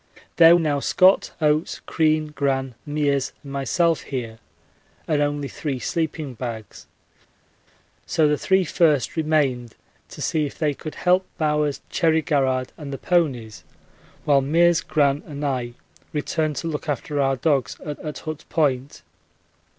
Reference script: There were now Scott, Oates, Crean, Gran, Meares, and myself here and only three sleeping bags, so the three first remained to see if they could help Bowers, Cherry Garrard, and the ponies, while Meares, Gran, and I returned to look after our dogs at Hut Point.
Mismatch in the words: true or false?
true